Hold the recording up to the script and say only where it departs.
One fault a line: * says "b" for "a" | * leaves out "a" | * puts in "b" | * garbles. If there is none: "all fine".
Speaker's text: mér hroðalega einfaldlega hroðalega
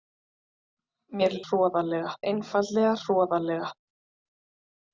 all fine